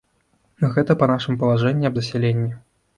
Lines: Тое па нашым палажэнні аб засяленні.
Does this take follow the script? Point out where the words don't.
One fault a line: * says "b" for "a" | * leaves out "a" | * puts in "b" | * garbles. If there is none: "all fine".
* says "Гэта" for "Тое"